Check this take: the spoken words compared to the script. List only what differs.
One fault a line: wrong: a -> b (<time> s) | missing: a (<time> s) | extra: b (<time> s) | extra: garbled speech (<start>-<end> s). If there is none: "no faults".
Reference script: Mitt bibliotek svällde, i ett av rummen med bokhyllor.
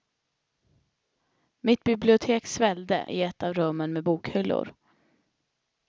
no faults